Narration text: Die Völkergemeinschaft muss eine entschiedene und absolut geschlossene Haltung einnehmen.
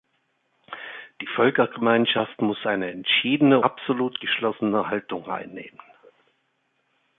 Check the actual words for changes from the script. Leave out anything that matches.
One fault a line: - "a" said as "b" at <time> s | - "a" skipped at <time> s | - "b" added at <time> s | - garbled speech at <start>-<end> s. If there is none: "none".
- "und" skipped at 3.6 s